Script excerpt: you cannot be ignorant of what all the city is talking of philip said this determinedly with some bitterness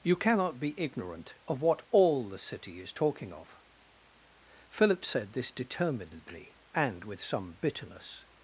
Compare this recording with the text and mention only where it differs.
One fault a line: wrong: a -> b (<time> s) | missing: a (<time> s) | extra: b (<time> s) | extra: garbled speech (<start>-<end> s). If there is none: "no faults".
extra: and (6.7 s)